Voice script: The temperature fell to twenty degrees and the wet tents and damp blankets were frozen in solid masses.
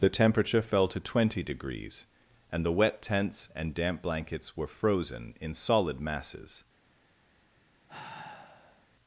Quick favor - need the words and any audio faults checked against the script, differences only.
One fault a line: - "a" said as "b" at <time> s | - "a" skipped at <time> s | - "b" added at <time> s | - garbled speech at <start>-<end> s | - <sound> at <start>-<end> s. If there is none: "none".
- sigh at 7.9-8.9 s